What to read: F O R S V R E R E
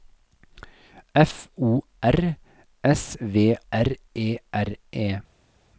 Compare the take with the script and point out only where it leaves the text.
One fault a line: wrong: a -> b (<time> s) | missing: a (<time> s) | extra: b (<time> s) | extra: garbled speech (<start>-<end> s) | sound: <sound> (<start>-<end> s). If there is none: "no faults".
no faults